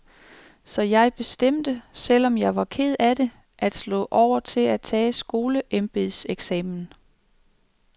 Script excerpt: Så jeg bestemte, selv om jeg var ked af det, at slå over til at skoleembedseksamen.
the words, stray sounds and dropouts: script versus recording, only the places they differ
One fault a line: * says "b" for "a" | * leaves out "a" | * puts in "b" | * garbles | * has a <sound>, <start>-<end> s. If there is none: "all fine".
* puts in "tage"